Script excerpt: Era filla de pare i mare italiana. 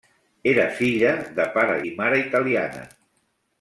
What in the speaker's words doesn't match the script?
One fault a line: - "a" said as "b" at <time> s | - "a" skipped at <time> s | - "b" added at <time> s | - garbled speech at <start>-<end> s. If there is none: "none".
none